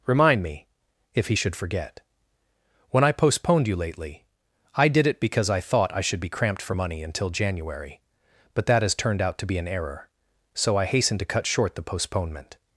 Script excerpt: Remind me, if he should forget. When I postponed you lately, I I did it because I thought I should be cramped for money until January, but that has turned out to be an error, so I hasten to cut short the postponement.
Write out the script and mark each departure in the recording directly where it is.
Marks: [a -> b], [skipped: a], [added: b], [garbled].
Remind me, if he should forget. When I postponed you lately, I [skipped: I] did it because I thought I should be cramped for money until January, but that has turned out to be an error, so I hasten to cut short the postponement.